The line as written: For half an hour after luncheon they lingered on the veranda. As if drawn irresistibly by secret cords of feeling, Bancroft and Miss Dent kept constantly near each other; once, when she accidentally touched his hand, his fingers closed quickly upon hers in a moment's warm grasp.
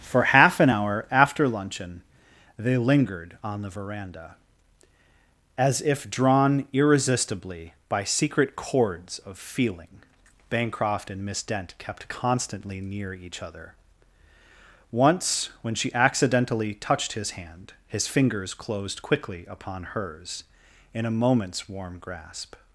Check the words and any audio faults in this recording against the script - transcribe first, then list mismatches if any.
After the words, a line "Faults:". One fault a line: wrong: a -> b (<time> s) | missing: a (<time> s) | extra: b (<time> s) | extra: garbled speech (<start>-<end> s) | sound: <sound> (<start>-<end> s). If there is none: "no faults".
For half an hour after luncheon they lingered on the veranda. As if drawn irresistibly by secret cords of feeling, Bancroft and Miss Dent kept constantly near each other; once, when she accidentally touched his hand, his fingers closed quickly upon hers in a moment's warm grasp.
Faults:
no faults